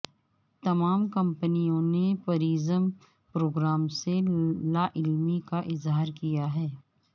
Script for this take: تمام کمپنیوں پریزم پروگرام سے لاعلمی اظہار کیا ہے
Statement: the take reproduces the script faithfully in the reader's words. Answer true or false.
false